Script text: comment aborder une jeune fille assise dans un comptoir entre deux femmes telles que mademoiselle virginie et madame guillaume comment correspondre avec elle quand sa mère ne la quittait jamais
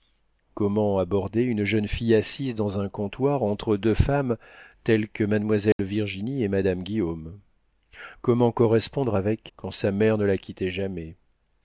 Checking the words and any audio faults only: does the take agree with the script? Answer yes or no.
no